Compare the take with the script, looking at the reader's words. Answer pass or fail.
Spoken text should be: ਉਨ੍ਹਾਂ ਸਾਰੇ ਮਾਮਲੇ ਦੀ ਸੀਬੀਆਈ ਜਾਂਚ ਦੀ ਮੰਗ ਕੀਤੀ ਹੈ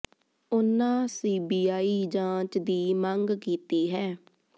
fail